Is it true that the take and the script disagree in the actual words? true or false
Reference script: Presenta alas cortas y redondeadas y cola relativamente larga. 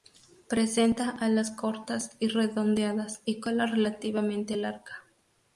false